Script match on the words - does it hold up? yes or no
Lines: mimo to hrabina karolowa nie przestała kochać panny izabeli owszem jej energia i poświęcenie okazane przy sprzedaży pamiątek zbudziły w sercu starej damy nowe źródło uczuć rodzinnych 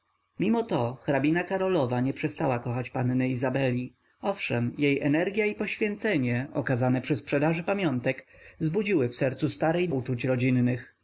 no